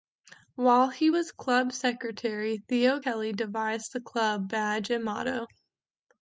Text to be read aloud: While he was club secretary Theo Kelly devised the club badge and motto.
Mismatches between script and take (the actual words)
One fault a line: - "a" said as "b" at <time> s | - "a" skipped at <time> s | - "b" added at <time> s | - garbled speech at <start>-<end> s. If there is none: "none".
none